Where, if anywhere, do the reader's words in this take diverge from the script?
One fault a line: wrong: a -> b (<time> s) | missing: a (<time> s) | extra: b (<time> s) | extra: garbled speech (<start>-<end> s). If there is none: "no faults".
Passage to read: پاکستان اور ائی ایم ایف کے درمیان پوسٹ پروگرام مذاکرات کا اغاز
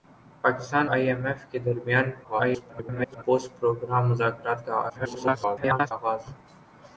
missing: اور (0.8 s)
extra: garbled speech (2.2-3.2 s)
extra: garbled speech (4.9-5.9 s)